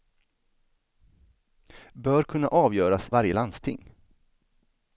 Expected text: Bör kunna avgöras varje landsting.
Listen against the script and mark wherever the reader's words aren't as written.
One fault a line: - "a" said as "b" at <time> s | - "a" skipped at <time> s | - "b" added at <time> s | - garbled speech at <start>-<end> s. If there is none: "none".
none